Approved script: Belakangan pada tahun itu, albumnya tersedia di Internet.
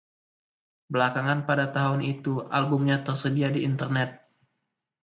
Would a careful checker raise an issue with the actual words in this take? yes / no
no